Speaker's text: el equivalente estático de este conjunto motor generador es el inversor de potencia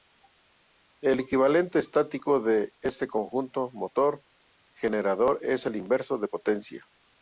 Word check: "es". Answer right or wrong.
right